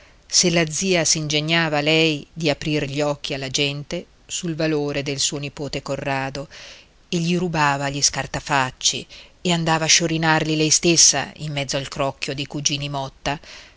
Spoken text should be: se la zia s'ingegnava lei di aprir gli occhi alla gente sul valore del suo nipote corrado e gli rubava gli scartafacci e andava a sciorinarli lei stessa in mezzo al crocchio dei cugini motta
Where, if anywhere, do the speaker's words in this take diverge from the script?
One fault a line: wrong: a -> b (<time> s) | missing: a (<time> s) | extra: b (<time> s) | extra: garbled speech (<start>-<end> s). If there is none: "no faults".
no faults